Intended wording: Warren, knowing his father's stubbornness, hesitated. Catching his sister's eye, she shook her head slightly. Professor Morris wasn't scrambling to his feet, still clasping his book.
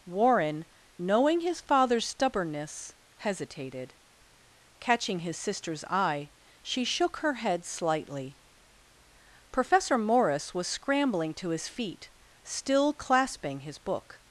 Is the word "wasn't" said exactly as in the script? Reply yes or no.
no